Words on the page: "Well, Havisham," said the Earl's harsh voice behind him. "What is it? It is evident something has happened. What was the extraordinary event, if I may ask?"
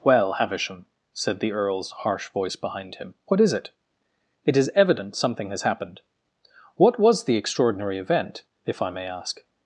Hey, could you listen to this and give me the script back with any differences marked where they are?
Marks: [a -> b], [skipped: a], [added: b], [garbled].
"Well, Havisham," said the Earl's harsh voice behind him. "What is it? It is evident something has happened. What was the extraordinary event, if I may ask?"